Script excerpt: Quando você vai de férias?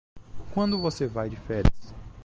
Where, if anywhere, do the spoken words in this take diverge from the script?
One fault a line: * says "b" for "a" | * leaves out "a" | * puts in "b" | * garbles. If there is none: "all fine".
all fine